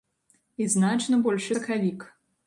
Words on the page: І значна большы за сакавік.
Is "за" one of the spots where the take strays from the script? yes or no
yes